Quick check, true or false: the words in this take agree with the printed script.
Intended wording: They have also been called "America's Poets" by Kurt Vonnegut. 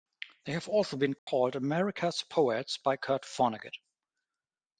true